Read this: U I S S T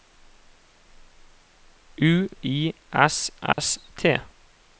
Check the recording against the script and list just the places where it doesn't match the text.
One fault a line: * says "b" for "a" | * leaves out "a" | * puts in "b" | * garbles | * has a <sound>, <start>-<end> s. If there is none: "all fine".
* has a dropout, 3.5-3.6 s